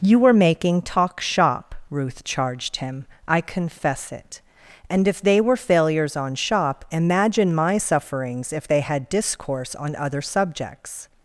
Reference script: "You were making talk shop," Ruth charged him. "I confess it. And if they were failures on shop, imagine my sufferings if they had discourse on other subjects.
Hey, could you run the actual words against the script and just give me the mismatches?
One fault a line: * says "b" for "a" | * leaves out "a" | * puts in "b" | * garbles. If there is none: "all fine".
all fine